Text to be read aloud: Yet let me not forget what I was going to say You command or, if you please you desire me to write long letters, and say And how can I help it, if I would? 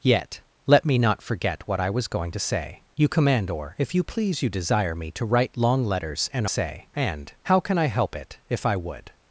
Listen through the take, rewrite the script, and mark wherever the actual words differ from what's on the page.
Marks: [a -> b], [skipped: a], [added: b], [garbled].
Yet let me not forget what I was going to say You command or, if you please you desire me to write long letters, and say And how can I help it, if I would?